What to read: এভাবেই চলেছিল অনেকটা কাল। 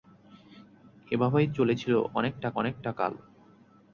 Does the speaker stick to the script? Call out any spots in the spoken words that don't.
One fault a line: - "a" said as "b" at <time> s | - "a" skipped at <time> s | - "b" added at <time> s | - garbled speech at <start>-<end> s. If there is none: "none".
- "অনেকটা" added at 2.5 s